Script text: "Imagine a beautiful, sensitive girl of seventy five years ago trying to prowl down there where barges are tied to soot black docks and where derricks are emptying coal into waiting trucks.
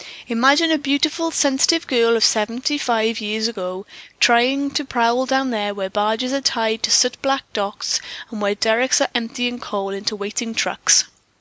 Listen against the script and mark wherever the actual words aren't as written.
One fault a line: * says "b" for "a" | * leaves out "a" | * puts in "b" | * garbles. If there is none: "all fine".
all fine